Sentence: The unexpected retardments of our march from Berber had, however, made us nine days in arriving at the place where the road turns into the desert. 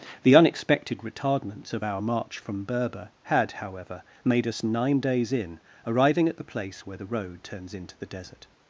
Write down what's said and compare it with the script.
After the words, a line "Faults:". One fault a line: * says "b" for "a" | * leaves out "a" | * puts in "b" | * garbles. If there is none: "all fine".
The unexpected retardments of our march from Berber had, however, made us nine days in arriving at the place where the road turns into the desert.
Faults:
all fine